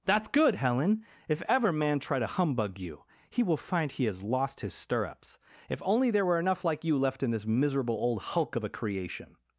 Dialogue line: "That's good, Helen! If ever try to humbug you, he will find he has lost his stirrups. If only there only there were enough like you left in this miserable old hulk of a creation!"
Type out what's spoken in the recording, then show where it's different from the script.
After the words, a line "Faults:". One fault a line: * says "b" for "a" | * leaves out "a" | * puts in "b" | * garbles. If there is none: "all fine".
"That's good, Helen! If ever man try to humbug you, he will find he has lost his stirrups. If only there were enough like you left in this miserable old hulk of a creation!"
Faults:
* puts in "man"
* leaves out "only there"